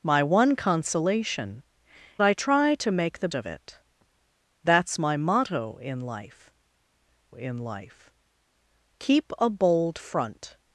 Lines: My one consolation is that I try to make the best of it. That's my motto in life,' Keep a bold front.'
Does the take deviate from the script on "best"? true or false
true